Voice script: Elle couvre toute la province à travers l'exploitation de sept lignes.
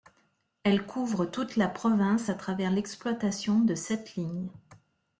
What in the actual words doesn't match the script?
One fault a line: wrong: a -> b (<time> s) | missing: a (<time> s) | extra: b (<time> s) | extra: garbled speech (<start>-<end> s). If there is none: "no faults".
no faults